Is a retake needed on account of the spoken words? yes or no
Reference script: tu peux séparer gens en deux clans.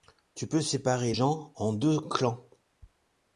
no